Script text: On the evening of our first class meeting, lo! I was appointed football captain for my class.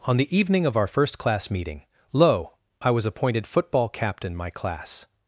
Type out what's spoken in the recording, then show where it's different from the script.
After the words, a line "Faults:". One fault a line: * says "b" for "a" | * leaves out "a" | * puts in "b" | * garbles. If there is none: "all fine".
On the evening of our first class meeting, lo! I was appointed football captain my class.
Faults:
* leaves out "for"